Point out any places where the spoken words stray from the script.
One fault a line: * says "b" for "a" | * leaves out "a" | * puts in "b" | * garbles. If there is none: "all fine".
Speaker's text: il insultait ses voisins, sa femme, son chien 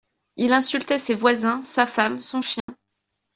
all fine